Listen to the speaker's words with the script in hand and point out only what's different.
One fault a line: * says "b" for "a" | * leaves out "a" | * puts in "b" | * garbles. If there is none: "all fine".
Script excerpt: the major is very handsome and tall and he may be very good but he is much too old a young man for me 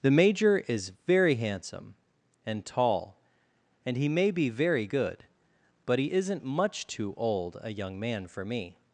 * says "isn't" for "is"